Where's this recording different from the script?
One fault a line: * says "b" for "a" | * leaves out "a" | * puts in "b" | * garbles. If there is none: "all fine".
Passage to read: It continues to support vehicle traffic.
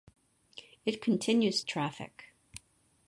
* leaves out "to support vehicle"